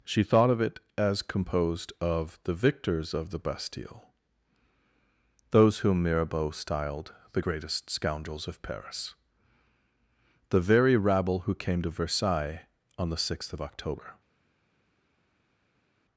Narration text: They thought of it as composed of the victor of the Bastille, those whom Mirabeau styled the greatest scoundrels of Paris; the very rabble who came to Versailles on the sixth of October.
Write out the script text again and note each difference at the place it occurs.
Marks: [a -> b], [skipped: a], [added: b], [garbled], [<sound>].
[They -> She] thought of it as composed of the [victor -> victors] of the Bastille, those whom Mirabeau styled the greatest scoundrels of Paris; the very rabble who came to Versailles on the sixth of October.